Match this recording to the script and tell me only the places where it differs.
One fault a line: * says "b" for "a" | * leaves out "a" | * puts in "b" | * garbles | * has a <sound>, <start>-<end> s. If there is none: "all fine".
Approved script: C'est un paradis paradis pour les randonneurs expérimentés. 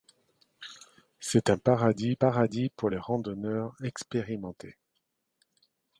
all fine